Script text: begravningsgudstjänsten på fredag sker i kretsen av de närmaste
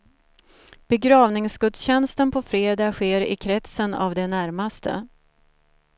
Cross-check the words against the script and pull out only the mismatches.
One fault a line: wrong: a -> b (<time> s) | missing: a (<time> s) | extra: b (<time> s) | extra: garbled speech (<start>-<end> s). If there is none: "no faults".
no faults